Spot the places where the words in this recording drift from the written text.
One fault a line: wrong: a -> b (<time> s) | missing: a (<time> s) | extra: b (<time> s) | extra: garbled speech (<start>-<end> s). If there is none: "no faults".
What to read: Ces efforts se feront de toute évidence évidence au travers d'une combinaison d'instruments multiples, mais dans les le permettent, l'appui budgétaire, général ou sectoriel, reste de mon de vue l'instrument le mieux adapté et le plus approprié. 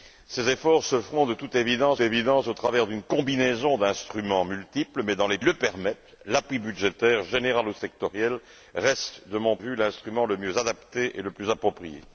no faults